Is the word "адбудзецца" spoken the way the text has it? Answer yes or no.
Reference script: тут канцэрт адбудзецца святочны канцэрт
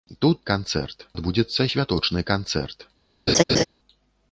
yes